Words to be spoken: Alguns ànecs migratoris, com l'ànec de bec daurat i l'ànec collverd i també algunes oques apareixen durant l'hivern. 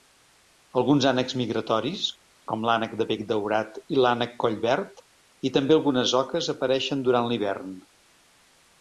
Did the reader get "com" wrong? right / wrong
right